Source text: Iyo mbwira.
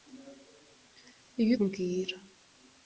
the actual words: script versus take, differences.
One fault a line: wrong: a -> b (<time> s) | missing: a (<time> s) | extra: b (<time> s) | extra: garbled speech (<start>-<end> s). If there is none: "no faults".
no faults